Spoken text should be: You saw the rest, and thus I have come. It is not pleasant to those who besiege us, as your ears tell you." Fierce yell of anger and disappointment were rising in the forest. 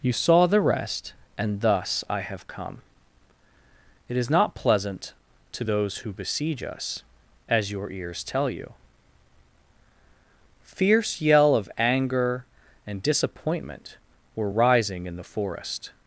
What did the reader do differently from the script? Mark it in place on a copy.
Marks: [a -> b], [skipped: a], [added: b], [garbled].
You saw the rest, and thus I have come. It is not pleasant to those who besiege us, as your ears tell you." Fierce yell of anger and disappointment were rising in the forest.